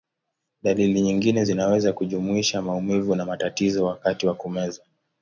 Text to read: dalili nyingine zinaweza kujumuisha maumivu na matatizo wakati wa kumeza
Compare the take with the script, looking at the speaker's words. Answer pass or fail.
pass